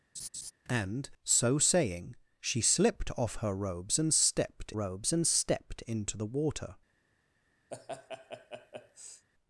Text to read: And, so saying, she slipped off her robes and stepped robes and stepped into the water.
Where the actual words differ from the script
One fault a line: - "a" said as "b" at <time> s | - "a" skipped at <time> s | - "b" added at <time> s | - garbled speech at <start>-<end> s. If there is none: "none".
none